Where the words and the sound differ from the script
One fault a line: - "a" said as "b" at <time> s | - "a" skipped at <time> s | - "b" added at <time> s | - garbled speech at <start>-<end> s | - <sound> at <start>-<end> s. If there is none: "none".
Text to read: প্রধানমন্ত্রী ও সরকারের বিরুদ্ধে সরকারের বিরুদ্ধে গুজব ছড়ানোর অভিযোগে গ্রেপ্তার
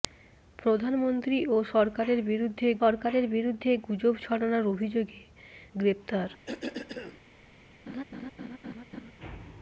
- cough at 6.5-7.2 s
- laugh at 7.9-9.1 s